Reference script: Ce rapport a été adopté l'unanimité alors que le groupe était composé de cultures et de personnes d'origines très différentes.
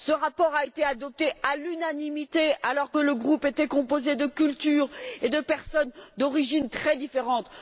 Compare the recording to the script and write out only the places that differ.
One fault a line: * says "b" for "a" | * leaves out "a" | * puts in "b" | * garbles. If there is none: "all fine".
* puts in "à"